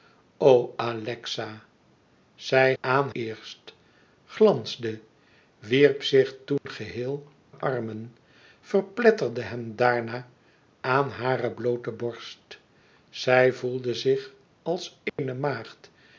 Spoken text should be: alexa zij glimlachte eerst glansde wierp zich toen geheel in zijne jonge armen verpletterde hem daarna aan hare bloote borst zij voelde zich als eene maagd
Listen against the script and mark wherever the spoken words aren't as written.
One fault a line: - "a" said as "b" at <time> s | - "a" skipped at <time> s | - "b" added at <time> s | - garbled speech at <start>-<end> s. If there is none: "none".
- "glimlachte" said as "aan" at 2.8 s
- "in zijne jonge" skipped at 7.3 s